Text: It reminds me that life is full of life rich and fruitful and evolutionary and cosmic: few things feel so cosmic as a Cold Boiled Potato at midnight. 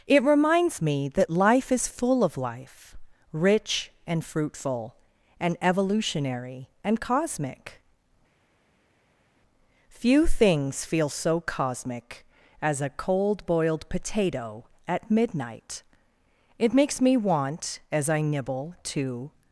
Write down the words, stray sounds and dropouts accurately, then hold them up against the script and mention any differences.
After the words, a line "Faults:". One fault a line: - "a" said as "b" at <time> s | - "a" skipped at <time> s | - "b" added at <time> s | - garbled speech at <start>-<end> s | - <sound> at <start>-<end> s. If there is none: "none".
It reminds me that life is full of life rich and fruitful and evolutionary and cosmic: few things feel so cosmic as a Cold Boiled Potato at midnight. It makes me want as I nibble to
Faults:
- "It makes me want as I nibble to" added at 16.6 s